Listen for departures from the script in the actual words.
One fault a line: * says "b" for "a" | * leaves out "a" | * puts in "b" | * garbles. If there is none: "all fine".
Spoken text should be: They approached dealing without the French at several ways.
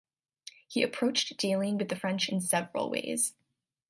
* says "He" for "They"
* says "with" for "without"
* says "in" for "at"